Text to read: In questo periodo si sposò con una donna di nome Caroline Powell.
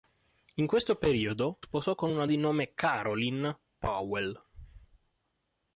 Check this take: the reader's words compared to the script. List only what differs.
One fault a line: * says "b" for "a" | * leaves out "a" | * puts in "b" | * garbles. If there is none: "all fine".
* leaves out "si"
* leaves out "donna"